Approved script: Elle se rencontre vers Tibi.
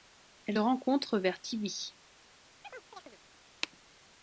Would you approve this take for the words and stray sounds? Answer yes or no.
no